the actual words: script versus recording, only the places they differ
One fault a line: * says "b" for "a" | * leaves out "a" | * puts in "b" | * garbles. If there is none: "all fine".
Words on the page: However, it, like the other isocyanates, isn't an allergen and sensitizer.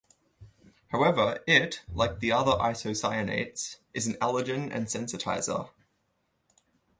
* says "is" for "isn't"